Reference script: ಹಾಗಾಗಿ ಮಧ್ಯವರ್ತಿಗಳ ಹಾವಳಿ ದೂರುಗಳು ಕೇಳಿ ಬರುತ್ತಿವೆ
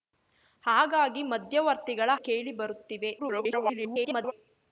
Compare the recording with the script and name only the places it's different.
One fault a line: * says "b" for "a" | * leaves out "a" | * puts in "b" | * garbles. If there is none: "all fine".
* leaves out "ಹಾವಳಿ ದೂರುಗಳು"
* garbles